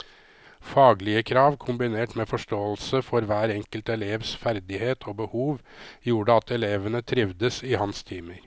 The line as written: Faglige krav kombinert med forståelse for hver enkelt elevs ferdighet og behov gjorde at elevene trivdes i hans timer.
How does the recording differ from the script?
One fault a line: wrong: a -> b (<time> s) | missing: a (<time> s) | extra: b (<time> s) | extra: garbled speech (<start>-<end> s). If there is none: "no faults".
no faults